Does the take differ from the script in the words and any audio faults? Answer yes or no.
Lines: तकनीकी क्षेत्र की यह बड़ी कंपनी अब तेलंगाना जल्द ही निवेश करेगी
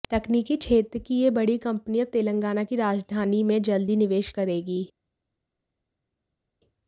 yes